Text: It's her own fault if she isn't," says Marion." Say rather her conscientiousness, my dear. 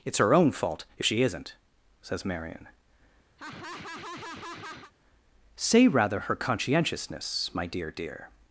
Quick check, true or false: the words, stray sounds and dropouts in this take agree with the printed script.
false